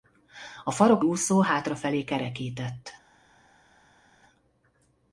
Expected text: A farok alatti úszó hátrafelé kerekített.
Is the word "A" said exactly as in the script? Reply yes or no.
yes